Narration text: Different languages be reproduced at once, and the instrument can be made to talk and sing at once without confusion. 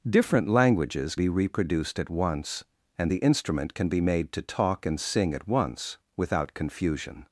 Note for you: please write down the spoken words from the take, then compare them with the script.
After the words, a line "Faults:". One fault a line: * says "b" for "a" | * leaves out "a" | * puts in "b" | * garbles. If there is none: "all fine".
Different languages be reproduced at once, and the instrument can be made to talk and sing at once without confusion.
Faults:
all fine